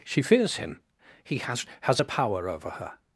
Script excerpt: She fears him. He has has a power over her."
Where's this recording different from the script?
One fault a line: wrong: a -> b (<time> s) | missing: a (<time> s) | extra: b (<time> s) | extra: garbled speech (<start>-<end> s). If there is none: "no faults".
no faults